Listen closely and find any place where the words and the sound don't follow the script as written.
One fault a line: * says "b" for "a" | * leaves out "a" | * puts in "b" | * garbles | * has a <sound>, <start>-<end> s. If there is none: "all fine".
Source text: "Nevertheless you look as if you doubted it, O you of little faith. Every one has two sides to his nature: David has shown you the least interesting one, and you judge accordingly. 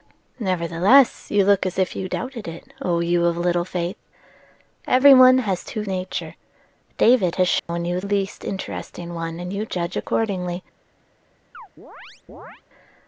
* leaves out "sides to his"
* has a dropout, 7.6-7.7 s
* leaves out "the"
* has a chirp, 11.5-12.6 s